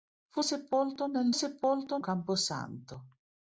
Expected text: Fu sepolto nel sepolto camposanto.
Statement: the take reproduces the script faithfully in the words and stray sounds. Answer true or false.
true